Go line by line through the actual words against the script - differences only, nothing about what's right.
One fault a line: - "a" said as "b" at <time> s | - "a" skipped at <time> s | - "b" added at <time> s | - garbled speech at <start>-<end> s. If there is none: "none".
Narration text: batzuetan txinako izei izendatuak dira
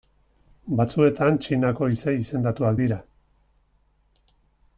none